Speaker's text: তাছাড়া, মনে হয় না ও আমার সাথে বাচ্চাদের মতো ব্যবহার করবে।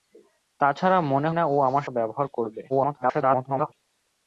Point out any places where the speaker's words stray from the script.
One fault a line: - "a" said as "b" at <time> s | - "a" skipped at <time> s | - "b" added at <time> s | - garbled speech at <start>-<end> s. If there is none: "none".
- "হয়" skipped at 1.3 s
- "সাথে বাচ্চাদের মতো" skipped at 1.8 s
- garbled speech at 2.7-3.7 s